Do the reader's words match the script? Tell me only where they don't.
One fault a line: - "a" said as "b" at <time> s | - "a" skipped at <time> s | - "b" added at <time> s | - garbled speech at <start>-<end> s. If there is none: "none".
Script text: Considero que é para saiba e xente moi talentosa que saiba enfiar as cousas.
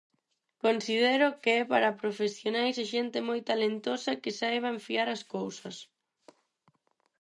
- "saiba" said as "profesionais" at 2.0 s